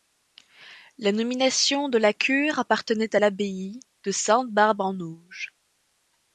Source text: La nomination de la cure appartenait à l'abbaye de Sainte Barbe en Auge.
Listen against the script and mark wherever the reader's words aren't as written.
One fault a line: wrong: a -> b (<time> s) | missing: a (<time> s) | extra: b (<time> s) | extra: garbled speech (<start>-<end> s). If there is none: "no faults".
no faults